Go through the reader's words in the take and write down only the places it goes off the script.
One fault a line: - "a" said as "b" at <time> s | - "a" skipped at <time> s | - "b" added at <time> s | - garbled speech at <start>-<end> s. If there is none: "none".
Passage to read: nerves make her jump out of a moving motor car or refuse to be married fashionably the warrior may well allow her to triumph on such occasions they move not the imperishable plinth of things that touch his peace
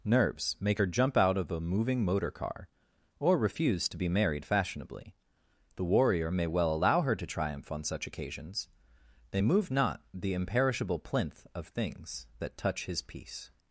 none